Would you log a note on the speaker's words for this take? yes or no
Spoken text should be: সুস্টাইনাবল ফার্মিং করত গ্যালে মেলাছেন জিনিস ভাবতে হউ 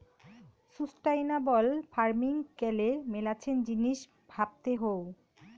yes